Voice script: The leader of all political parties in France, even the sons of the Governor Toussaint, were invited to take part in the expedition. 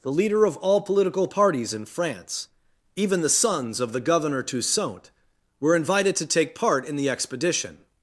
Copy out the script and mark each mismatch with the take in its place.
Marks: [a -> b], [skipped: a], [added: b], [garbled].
The leader of all political parties in France, even the sons of the Governor Toussaint, were invited to take part in the expedition.